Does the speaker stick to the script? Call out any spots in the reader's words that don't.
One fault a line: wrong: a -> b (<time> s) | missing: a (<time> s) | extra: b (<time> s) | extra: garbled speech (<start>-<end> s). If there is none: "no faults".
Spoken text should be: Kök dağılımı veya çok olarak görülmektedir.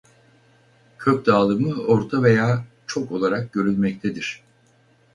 extra: orta (1.8 s)